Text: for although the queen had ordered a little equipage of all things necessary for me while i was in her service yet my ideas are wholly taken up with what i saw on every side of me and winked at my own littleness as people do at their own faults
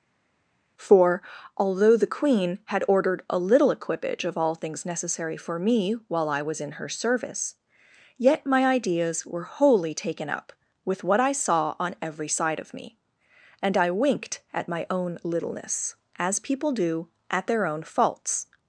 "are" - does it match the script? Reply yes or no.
no